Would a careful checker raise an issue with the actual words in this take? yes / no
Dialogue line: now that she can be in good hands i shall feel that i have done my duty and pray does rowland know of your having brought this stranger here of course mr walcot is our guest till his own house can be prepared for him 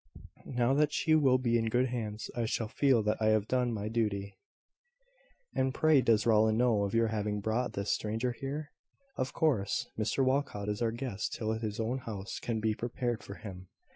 yes